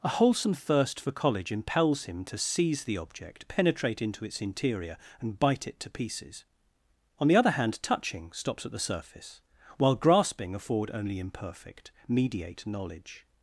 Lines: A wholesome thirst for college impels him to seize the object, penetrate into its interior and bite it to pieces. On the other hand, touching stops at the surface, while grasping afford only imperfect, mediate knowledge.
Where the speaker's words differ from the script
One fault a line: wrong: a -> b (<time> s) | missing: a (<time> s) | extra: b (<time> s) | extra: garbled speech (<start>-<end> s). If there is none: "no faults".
no faults